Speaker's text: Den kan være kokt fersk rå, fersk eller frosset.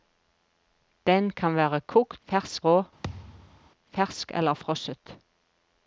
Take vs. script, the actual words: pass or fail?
pass